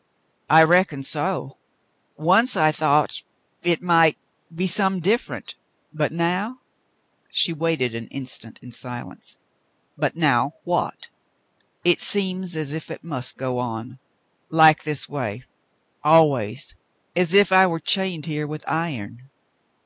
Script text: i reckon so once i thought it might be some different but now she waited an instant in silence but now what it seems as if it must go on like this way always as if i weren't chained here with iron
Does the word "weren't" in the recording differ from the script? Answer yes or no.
yes